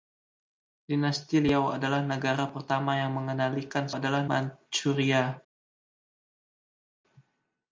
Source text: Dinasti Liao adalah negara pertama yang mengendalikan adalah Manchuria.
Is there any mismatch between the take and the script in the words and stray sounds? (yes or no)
no